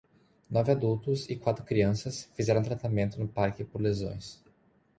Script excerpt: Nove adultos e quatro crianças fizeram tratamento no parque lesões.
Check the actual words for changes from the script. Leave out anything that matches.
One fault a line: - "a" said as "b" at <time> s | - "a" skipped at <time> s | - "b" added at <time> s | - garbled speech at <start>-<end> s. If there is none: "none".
- "por" added at 3.6 s